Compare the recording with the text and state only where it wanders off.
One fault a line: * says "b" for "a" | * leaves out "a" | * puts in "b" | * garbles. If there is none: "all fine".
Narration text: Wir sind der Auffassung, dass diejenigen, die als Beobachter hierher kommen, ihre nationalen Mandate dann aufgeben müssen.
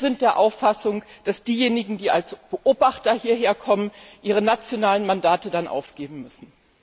all fine